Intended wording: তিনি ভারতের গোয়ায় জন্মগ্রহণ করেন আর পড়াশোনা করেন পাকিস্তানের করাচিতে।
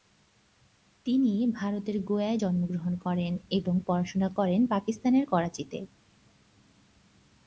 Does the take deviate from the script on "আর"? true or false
true